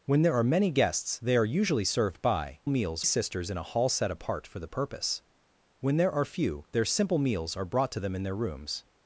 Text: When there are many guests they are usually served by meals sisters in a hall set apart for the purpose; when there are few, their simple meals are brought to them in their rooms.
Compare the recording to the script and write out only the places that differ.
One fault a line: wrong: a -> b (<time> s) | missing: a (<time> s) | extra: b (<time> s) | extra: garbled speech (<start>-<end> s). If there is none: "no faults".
no faults